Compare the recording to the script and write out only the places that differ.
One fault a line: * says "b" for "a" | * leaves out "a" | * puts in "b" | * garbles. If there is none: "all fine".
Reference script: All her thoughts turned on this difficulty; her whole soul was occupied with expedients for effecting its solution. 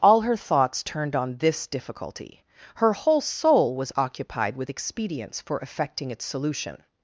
all fine